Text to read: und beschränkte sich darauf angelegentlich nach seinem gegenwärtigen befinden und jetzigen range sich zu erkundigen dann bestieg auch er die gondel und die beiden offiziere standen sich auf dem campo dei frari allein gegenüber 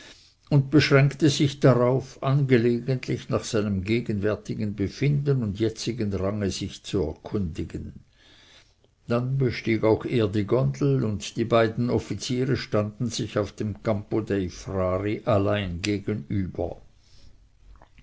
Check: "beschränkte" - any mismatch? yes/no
no